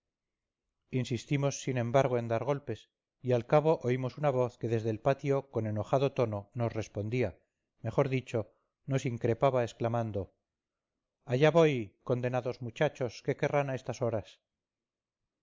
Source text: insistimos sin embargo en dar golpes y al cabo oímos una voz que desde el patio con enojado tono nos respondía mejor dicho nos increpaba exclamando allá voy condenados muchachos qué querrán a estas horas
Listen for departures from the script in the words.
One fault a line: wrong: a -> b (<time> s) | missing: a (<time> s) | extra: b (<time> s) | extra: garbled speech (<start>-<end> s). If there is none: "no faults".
no faults